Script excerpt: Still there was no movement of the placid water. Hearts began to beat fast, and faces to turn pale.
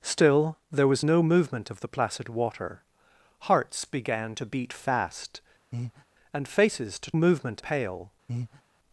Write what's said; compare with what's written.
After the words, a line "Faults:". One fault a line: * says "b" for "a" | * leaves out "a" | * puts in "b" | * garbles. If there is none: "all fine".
Still there was no movement of the placid water. Hearts began to beat fast, and faces to movement pale.
Faults:
* says "movement" for "turn"